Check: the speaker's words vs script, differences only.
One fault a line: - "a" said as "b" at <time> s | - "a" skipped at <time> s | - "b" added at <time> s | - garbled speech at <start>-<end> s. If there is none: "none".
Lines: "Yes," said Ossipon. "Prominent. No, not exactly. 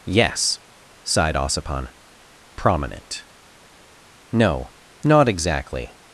- "said" said as "sighed" at 1.0 s